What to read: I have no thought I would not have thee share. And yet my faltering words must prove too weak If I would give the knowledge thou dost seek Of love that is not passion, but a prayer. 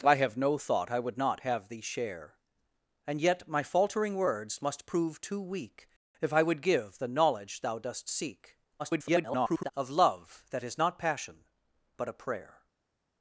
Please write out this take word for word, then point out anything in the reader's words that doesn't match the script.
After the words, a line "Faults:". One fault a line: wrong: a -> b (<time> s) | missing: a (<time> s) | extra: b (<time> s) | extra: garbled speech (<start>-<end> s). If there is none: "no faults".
I have no thought I would not have thee share. And yet my faltering words must prove too weak If I would give the knowledge thou dost seek [garbled] Of love that is not passion, but a prayer.
Faults:
extra: garbled speech (8.8-9.7 s)